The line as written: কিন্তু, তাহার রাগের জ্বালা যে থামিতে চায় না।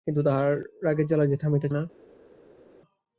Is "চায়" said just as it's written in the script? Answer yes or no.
no